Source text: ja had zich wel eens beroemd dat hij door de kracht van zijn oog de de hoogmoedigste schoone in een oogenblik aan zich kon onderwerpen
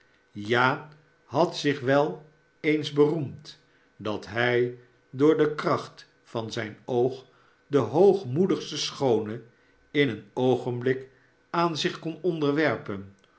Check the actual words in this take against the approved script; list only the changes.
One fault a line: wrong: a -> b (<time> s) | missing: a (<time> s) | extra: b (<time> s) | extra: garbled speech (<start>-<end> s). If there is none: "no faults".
missing: de (7.8 s)